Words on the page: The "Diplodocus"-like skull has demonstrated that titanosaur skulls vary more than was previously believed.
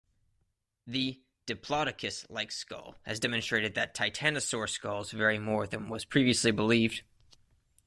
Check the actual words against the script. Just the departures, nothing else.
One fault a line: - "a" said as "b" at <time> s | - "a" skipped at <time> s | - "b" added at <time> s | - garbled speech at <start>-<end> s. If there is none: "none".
none